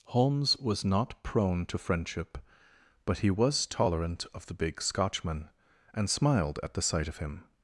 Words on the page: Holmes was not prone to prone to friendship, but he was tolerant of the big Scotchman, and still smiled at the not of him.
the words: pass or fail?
fail